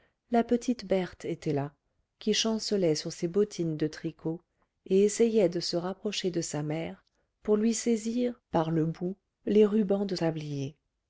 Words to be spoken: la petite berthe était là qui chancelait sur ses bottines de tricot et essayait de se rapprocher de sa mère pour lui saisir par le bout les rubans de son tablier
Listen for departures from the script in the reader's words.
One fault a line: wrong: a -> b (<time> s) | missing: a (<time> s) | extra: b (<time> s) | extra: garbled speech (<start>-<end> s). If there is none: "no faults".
missing: son (10.2 s)